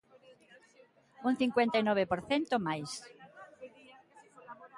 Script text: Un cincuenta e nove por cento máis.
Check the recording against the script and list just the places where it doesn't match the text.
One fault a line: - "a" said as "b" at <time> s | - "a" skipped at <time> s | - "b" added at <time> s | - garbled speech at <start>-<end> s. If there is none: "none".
none